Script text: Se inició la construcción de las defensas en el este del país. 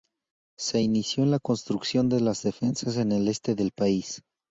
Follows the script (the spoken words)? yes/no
yes